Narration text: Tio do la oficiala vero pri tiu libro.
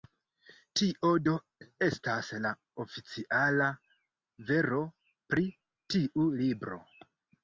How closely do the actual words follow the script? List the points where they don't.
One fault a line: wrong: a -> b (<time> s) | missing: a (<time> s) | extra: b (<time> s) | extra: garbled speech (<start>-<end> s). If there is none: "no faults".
extra: estas (1.9 s)